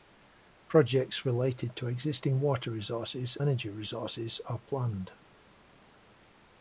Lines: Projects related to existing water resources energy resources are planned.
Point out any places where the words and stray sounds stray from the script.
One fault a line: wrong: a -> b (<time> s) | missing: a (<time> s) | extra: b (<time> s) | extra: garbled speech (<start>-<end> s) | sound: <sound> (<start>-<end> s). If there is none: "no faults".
no faults